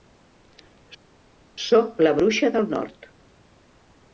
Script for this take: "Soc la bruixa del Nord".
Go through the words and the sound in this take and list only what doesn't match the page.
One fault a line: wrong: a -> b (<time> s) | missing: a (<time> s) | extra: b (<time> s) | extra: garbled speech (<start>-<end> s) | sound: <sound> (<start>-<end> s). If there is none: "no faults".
no faults